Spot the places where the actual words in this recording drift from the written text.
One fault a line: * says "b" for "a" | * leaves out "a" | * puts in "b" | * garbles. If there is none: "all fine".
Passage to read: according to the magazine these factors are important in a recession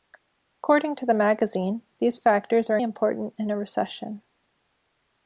all fine